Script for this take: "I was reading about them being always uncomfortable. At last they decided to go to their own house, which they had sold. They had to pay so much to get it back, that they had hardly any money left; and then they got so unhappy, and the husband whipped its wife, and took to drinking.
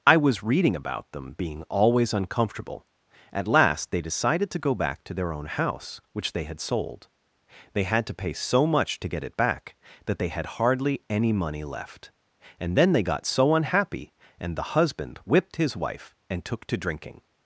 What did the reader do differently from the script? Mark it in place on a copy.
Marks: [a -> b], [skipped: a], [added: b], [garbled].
"I was reading about them being always uncomfortable. At last they decided to go [added: back] to their own house, which they had sold. They had to pay so much to get it back, that they had hardly any money left; and then they got so unhappy, and the husband whipped [its -> his] wife, and took to drinking.